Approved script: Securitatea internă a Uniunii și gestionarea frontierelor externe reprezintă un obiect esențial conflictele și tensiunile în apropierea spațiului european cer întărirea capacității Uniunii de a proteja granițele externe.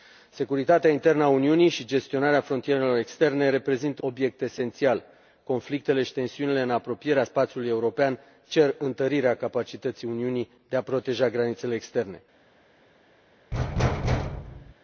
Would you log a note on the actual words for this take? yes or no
yes